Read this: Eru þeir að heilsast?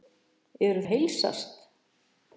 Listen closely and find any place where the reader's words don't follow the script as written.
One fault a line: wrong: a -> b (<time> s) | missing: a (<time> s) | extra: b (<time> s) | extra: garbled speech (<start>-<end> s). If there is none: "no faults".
missing: þeir (0.8 s)